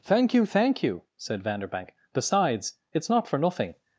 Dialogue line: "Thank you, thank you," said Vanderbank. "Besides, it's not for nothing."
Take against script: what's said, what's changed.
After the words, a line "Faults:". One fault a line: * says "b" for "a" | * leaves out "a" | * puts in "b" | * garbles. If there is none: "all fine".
"Thank you, thank you," said Vanderbank. "Besides, it's not for nothing."
Faults:
all fine